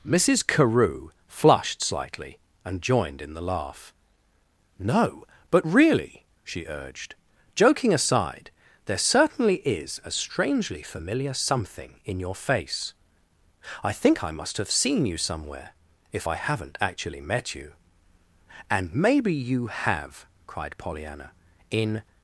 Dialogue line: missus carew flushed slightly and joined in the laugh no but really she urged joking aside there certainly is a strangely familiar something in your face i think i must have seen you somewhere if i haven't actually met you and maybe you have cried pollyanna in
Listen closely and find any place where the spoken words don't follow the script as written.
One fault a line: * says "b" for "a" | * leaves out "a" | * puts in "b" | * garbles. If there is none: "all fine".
all fine